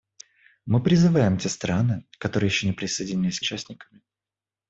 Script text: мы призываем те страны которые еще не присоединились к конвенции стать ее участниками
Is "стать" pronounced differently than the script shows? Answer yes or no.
yes